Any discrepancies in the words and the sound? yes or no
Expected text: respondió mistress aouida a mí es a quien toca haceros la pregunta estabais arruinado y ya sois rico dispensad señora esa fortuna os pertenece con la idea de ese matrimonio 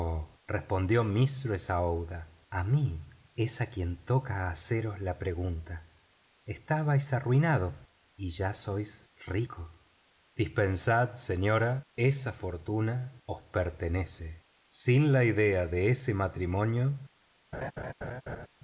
yes